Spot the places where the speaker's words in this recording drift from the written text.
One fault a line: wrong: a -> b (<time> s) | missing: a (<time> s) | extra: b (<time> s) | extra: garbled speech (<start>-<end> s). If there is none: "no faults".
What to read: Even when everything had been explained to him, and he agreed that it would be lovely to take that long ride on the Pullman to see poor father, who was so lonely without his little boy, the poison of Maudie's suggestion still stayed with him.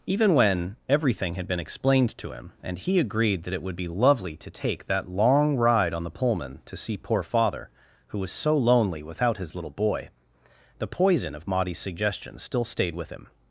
no faults